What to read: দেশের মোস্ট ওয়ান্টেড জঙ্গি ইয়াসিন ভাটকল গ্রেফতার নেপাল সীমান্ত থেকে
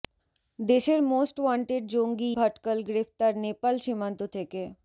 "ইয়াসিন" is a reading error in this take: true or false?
true